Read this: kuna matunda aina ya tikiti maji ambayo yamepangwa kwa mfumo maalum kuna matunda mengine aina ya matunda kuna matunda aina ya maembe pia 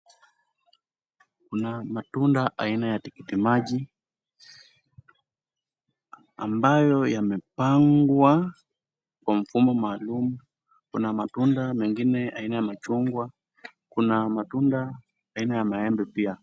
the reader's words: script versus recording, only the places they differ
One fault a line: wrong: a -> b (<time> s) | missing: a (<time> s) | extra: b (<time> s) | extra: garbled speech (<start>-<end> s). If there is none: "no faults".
wrong: matunda -> machungwa (12.6 s)